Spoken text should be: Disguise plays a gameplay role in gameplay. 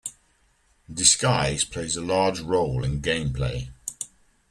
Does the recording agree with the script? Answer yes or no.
no